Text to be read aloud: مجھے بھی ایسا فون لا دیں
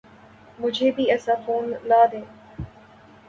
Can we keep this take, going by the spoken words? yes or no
yes